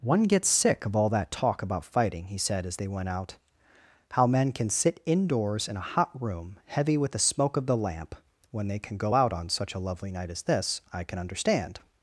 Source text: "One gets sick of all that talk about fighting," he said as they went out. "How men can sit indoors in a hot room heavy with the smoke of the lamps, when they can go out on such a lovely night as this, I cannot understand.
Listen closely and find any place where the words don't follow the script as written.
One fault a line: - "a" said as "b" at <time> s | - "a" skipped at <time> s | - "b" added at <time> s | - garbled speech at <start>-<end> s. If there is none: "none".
- "lamps" said as "lamp" at 7.8 s
- "cannot" said as "can" at 11.0 s